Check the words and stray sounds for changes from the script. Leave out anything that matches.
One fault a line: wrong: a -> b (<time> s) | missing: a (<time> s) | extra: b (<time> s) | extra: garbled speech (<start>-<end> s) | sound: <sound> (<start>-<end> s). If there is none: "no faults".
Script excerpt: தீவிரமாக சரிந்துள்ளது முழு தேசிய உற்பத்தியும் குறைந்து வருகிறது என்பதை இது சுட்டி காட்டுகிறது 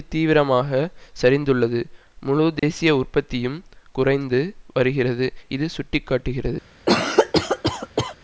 sound: dropout (2.6-2.6 s)
missing: என்பதை (5.3 s)
sound: cough (6.9-8.1 s)